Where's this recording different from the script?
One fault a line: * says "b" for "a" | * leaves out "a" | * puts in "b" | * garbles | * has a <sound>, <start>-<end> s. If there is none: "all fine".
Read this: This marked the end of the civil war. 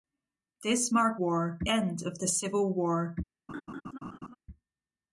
* says "war" for "the"
* has a laugh, 3.5-4.4 s